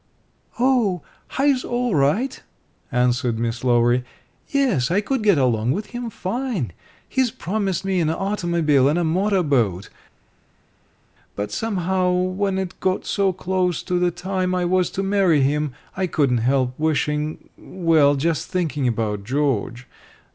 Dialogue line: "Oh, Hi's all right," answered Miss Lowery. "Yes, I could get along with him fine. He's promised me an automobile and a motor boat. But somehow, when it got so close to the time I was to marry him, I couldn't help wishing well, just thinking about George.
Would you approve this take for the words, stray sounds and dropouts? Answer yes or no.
yes